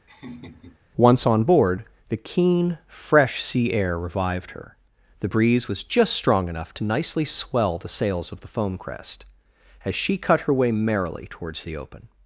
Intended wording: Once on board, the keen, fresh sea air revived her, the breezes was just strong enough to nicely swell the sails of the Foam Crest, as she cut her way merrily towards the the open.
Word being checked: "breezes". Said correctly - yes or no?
no